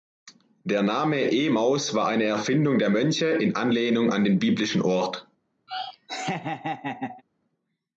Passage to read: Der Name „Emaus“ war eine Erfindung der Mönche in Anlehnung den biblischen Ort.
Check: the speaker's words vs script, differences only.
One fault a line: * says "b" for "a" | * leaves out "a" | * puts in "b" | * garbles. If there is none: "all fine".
* puts in "an"